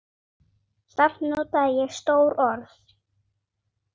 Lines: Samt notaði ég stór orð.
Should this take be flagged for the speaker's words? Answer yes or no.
no